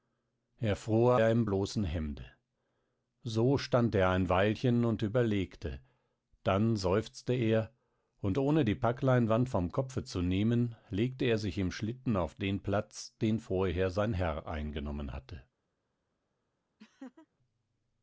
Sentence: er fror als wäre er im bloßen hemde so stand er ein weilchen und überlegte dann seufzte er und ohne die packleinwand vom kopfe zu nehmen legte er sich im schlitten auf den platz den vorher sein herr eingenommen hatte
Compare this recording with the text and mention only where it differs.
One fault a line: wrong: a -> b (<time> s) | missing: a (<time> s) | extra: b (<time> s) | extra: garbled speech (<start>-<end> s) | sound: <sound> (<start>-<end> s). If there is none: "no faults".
missing: als wäre (1.2 s)
sound: laugh (16.8-17.3 s)